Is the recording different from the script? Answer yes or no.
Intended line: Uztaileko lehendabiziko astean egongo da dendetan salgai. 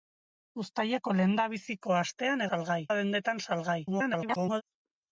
yes